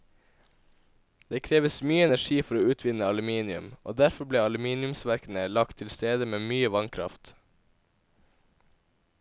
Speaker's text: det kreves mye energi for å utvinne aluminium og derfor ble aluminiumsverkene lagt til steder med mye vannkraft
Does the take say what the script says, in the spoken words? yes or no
yes